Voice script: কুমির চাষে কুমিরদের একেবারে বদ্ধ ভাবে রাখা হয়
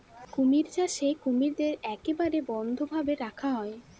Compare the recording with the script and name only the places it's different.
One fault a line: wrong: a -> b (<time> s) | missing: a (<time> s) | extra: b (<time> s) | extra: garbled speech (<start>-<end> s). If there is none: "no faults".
no faults